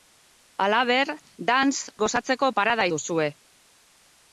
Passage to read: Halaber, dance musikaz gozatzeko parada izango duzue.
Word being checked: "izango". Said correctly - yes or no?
no